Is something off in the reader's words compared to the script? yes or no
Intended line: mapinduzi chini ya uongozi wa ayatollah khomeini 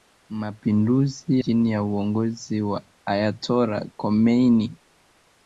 no